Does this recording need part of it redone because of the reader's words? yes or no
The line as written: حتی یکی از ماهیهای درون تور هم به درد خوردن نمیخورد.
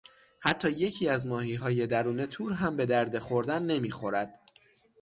no